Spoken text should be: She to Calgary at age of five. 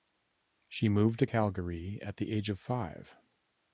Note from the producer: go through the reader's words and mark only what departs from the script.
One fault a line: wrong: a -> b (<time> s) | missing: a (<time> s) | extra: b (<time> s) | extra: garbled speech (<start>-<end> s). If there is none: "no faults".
extra: moved (0.9 s)
extra: the (2.2 s)